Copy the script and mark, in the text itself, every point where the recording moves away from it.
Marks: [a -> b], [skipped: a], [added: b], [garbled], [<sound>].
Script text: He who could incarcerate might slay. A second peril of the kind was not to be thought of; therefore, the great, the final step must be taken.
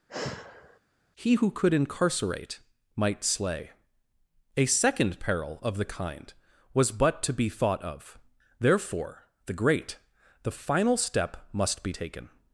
[sigh] He who could incarcerate might slay. A second peril of the kind was [not -> but] to be thought of; therefore, the great, the final step must be taken.